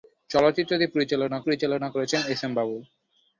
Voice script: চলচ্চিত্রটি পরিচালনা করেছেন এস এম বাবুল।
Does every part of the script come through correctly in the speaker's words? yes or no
no